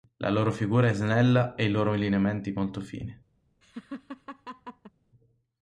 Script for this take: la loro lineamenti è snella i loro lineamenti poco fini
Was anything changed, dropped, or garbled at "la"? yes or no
no